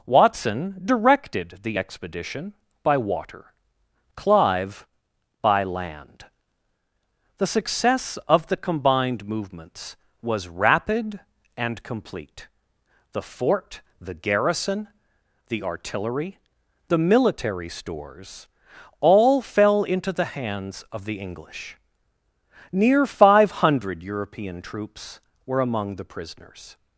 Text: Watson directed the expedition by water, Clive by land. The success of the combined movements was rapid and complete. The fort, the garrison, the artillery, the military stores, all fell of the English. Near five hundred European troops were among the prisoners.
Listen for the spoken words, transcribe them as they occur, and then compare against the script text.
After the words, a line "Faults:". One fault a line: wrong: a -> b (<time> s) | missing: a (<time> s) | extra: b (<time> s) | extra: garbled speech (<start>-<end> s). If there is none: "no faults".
Watson directed the expedition by water, Clive by land. The success of the combined movements was rapid and complete. The fort, the garrison, the artillery, the military stores, all fell into the hands of the English. Near five hundred European troops were among the prisoners.
Faults:
extra: into the hands (19.8 s)